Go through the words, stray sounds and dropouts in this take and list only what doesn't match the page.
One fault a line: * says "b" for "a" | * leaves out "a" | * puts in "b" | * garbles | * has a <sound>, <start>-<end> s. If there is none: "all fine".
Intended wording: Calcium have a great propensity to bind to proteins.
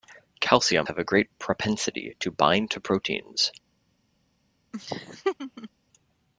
* has a laugh, 4.7-5.7 s